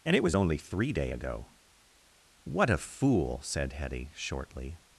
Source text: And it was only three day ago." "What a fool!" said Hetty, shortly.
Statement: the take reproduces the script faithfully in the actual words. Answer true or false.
true